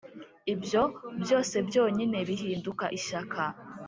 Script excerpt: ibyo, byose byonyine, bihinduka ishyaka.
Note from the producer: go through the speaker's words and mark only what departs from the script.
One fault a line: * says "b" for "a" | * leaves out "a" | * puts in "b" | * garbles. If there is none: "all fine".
all fine